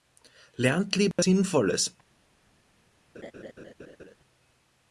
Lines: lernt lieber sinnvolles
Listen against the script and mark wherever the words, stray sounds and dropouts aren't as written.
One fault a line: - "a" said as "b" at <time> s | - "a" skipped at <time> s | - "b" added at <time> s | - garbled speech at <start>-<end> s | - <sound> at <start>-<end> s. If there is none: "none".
- dropout at 1.1-1.2 s
- laugh at 3.1-4.1 s